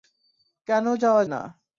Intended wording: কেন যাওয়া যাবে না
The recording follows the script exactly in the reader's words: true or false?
false